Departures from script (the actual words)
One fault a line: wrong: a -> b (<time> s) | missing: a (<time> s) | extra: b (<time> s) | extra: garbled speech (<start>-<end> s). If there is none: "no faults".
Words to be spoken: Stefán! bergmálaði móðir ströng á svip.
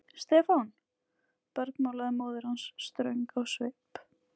extra: hans (2.5 s)